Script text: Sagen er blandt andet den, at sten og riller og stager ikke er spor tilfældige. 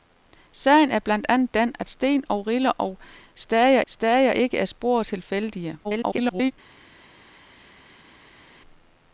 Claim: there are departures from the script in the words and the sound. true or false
true